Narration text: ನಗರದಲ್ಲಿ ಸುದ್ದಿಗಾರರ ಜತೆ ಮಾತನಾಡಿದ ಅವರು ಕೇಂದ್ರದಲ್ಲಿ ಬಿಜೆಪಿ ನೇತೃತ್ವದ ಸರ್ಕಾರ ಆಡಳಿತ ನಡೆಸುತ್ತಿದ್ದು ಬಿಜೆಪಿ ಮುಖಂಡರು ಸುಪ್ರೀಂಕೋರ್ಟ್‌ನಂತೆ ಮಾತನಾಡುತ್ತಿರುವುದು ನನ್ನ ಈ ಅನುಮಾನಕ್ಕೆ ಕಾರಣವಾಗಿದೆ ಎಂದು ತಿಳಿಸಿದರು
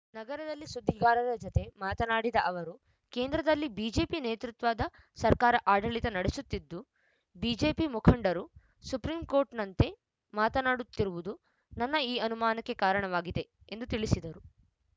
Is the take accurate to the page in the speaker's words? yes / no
yes